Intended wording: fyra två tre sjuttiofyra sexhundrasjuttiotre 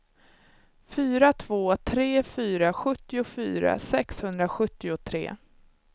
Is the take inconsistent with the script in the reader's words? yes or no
yes